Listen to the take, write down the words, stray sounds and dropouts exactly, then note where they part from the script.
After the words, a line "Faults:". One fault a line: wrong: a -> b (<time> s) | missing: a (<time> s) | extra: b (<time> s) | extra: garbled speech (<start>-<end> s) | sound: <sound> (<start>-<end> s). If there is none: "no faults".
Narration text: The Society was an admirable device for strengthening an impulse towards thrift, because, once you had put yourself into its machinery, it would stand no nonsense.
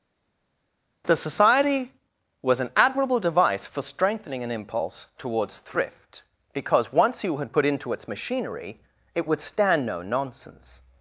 The Society was an admirable device for strengthening an impulse towards thrift, because, once you had put into its machinery, it would stand no nonsense.
Faults:
missing: yourself (7.7 s)